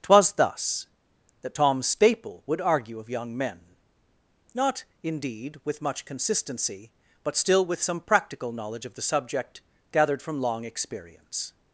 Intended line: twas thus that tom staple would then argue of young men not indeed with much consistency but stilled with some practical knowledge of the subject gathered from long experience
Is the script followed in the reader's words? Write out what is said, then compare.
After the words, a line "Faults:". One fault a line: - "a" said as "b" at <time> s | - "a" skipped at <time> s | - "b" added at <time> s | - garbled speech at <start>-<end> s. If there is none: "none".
twas thus that tom staple would argue of young men not indeed with much consistency but still with some practical knowledge of the subject gathered from long experience
Faults:
- "then" skipped at 2.6 s
- "stilled" said as "still" at 7.4 s